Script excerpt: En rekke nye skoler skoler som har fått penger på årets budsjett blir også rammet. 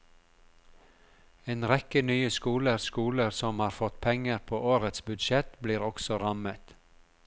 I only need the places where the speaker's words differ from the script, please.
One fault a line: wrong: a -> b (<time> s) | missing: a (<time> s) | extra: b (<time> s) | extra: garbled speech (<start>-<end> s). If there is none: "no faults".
no faults